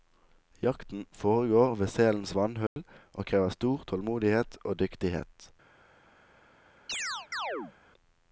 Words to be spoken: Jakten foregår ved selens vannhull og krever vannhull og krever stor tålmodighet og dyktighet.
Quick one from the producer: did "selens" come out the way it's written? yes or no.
yes